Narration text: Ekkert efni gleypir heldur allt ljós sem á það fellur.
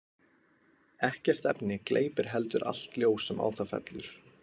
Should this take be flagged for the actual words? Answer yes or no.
no